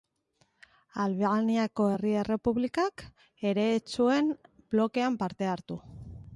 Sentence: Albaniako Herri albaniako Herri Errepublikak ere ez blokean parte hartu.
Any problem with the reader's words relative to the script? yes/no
yes